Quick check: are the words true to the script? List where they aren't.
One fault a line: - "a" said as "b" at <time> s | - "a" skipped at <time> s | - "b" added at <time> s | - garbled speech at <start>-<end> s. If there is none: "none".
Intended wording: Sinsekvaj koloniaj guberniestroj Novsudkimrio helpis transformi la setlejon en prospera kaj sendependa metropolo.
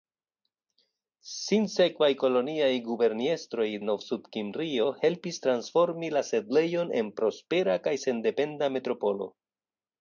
none